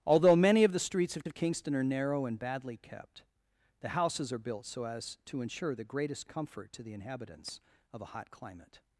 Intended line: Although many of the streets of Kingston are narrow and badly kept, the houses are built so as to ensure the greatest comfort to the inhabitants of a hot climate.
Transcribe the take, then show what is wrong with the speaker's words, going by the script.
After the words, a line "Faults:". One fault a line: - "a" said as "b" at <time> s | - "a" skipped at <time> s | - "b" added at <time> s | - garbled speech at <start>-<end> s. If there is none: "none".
Although many of the streets of of Kingston are narrow and badly kept, the houses are built so as to ensure the greatest comfort to the inhabitants of a hot climate.
Faults:
- "of" added at 1.3 s